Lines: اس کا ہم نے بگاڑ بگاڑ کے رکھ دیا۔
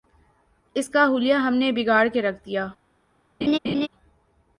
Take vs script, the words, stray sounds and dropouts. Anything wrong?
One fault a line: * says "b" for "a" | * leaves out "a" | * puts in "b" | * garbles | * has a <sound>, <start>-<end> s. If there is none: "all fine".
* puts in "حلیہ"
* leaves out "بگاڑ"
* has a laugh, 3.4-3.9 s